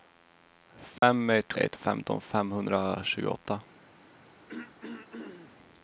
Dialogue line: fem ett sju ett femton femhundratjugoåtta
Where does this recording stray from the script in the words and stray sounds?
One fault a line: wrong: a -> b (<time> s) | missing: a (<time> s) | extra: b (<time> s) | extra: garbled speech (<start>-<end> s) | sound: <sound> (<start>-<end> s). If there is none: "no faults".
sound: dropout (1.0-1.0 s)
missing: sju (1.5 s)
sound: throat clearing (4.5-5.6 s)